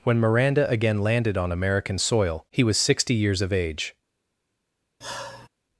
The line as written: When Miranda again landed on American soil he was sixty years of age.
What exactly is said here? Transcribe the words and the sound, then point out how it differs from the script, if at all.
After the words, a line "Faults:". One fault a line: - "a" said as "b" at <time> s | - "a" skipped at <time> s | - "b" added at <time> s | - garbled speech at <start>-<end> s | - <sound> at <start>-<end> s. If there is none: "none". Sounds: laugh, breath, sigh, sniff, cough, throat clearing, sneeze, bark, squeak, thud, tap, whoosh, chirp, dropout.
When Miranda again landed on American soil he was sixty years of age.
Faults:
- sigh at 5.0-5.5 s